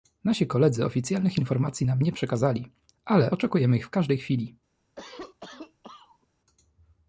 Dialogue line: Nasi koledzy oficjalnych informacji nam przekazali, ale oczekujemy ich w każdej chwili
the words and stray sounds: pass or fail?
fail